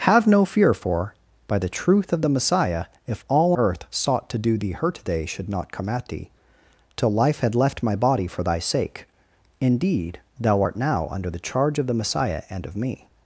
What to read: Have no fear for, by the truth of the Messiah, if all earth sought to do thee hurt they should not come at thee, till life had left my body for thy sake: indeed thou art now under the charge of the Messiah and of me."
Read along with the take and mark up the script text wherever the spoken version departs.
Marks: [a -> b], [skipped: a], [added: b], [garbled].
Have no fear for, by the truth of the Messiah, if all earth sought to do thee hurt they should not come at thee, till life had left my body for thy sake: indeed thou art now under the charge of the Messiah and of me."